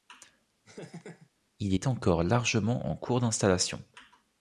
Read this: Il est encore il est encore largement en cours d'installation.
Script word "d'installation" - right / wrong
right